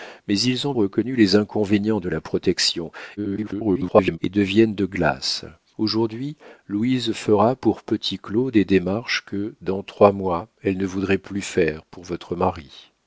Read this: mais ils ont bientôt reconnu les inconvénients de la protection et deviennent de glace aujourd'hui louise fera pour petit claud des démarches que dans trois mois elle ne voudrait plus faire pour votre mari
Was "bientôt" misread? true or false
true